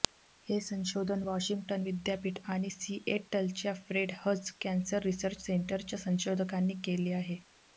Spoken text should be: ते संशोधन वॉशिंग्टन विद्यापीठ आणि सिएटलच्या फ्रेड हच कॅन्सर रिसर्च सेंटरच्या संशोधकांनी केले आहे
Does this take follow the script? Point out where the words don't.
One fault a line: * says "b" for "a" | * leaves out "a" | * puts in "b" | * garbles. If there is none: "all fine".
* says "हे" for "ते"